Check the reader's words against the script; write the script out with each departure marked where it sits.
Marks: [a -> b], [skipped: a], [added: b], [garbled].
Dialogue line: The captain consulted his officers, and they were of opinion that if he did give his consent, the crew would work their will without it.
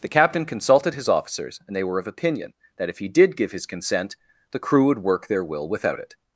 The captain consulted his officers, and they were of opinion that if he did give his consent, the crew would work their will without it.